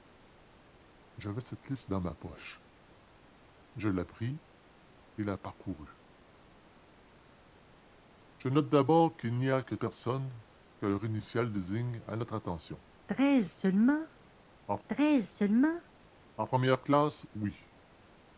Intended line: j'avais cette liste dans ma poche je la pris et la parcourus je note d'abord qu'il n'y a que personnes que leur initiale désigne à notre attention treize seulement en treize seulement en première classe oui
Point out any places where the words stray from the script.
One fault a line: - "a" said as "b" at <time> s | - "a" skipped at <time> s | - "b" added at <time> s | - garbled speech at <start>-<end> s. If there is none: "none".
none